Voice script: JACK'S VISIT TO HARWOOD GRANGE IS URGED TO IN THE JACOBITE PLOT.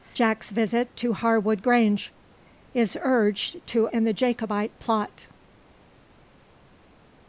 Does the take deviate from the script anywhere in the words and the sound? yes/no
no